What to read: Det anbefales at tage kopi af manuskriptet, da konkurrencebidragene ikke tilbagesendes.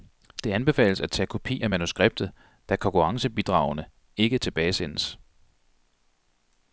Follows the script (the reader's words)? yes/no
yes